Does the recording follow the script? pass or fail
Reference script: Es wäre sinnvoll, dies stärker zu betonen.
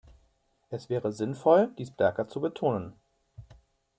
pass